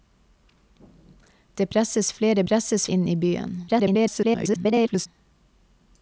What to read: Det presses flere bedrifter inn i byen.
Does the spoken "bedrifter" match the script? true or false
false